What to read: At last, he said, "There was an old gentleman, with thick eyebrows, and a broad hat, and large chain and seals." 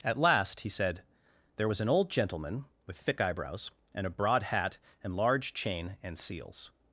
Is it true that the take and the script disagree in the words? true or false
false